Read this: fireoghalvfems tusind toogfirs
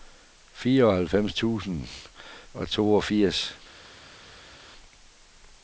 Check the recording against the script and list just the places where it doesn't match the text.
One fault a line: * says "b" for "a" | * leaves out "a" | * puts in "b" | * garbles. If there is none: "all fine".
* puts in "og"